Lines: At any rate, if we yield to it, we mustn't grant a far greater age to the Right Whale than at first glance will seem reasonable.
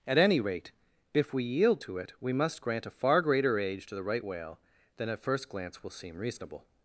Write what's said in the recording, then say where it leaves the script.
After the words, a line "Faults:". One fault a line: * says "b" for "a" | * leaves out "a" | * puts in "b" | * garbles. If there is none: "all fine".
At any rate, if we yield to it, we must grant a far greater age to the Right Whale than at first glance will seem reasonable.
Faults:
* says "must" for "mustn't"